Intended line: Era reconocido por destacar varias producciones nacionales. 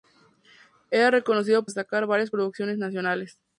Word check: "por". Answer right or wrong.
wrong